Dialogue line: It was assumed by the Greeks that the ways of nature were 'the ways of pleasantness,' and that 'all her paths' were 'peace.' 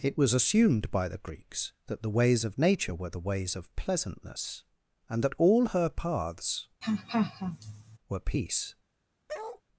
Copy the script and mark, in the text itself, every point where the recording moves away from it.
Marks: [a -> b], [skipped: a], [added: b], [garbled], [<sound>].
It was assumed by the Greeks that the ways of nature were 'the ways of pleasantness,' and that 'all her paths' [laugh] were 'peace.' [bark]